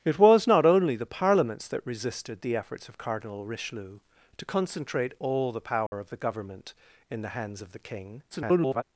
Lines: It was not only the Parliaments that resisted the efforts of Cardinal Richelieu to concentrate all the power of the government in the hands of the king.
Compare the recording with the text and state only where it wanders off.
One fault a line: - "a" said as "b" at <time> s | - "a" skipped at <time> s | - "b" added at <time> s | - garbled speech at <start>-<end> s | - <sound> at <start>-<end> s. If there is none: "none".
- dropout at 5.9-5.9 s
- garbled speech at 8.3-8.8 s